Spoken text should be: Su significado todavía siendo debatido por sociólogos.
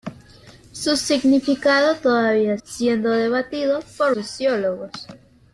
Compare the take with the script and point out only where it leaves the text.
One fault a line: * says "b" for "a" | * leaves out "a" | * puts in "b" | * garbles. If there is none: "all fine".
all fine